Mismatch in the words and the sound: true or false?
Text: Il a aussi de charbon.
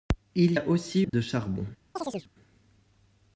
true